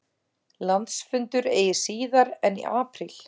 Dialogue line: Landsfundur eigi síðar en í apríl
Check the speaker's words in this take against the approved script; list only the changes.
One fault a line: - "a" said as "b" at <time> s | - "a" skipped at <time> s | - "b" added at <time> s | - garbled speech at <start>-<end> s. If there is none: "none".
none